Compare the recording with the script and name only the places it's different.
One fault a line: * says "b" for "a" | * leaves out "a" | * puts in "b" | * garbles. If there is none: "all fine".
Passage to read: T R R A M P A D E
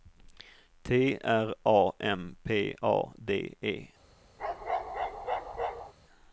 * leaves out "R"